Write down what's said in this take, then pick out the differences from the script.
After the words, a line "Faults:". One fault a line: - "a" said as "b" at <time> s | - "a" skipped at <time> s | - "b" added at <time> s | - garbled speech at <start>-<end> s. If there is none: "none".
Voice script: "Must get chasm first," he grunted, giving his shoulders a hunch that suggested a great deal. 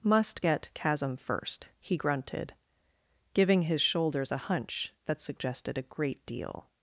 "Must get chasm first," he grunted, giving his shoulders a hunch that suggested a great deal.
Faults:
none